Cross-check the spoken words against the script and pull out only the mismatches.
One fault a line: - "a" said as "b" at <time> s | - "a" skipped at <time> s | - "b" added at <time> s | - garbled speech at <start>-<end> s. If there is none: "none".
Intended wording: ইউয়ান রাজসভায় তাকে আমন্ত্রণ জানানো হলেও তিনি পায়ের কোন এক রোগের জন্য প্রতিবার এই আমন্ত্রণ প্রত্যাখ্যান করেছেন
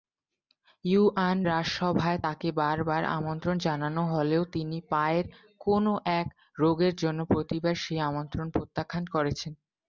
- "বারবার" added at 2.6 s
- "এই" said as "সেই" at 7.8 s